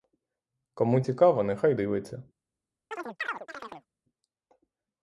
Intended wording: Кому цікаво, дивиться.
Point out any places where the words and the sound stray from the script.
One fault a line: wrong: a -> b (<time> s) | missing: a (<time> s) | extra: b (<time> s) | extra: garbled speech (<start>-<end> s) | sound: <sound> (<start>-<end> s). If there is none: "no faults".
extra: нехай (1.4 s)
sound: chirp (2.9-3.9 s)